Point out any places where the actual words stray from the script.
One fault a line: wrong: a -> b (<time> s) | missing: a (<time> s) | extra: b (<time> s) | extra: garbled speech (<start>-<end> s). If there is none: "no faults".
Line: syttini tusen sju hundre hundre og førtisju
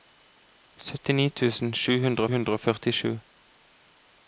no faults